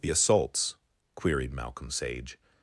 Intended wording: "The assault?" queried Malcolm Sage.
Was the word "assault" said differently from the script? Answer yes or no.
yes